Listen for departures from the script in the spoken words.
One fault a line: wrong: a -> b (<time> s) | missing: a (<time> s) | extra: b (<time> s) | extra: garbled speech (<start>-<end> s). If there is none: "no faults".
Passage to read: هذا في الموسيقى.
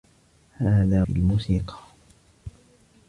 no faults